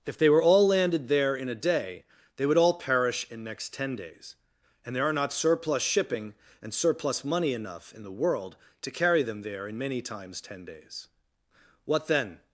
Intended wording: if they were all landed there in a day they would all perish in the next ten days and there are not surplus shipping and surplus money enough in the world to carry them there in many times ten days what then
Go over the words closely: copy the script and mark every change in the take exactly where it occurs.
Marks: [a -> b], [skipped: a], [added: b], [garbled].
if they were all landed there in a day they would all perish in [skipped: the] next ten days and there are not surplus shipping and surplus money enough in the world to carry them there in many times ten days what then